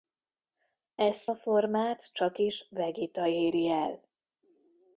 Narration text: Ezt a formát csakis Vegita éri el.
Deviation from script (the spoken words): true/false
false